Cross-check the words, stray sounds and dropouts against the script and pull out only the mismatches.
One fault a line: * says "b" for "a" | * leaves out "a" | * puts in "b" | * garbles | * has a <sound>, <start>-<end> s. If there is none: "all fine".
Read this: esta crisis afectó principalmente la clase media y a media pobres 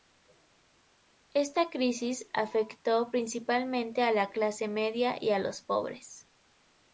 * puts in "a"
* says "los" for "media"